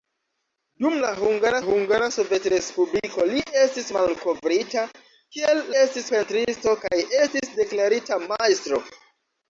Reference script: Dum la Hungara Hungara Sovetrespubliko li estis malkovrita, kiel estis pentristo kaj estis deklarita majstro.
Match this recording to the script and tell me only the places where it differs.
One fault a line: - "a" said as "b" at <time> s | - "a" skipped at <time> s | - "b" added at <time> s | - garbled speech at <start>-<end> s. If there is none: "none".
none